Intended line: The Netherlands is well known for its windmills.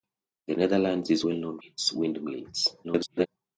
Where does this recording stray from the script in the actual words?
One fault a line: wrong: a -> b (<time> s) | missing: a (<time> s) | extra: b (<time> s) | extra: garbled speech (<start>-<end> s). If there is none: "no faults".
missing: for (1.6 s)
extra: garbled speech (2.8-3.3 s)